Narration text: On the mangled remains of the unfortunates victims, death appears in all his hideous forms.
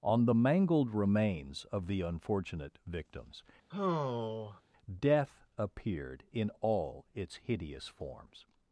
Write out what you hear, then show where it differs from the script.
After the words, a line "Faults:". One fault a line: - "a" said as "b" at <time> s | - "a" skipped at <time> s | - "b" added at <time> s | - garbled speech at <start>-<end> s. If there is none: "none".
On the mangled remains of the unfortunate victims, death appeared in all its hideous forms.
Faults:
- "unfortunates" said as "unfortunate" at 2.0 s
- "appears" said as "appeared" at 5.6 s
- "his" said as "its" at 7.1 s